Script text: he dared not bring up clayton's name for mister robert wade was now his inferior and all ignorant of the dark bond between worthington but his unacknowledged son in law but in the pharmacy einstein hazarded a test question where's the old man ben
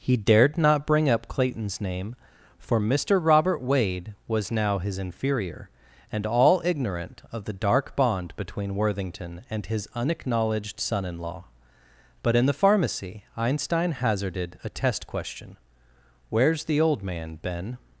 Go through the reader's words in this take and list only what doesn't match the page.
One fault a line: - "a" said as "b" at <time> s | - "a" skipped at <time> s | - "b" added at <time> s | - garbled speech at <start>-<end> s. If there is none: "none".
- "but" said as "and" at 9.5 s